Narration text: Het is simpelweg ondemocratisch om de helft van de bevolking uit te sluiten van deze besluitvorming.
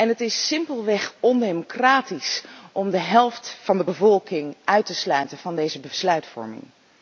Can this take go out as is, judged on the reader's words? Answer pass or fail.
pass